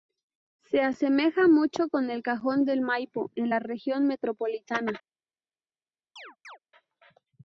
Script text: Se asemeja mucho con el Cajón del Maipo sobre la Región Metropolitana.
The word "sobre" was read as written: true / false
false